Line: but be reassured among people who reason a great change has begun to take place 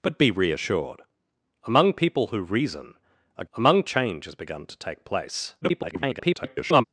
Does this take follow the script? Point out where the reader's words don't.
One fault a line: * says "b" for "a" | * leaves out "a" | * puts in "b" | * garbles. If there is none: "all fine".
* says "among" for "great"
* garbles